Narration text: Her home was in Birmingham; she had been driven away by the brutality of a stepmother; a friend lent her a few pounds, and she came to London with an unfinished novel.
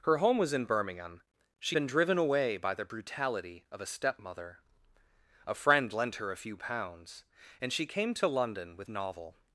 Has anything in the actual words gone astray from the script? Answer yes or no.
yes